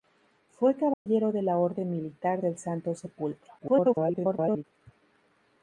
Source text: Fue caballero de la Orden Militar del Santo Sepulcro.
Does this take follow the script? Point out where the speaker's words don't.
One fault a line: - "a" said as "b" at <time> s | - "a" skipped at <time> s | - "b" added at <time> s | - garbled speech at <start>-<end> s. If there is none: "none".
- garbled speech at 3.6-4.6 s